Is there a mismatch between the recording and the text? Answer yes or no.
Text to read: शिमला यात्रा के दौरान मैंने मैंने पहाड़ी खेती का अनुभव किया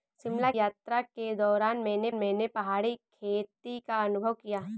no